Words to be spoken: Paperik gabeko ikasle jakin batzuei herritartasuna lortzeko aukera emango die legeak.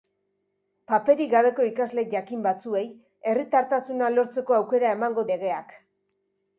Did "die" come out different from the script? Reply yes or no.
yes